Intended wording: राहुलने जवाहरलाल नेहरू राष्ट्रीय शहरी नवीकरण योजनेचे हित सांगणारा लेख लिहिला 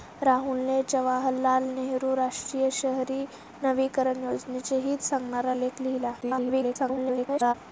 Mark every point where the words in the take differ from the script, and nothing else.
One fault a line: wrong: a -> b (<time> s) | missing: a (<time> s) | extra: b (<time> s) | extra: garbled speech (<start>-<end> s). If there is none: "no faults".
extra: garbled speech (6.2-7.5 s)